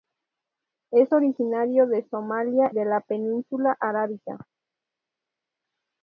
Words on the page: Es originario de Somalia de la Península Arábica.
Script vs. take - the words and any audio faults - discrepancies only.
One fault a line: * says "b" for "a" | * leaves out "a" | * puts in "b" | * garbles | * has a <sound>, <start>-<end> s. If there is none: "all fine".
all fine